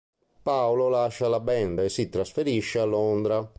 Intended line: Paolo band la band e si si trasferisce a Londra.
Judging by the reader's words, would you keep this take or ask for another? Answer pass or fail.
fail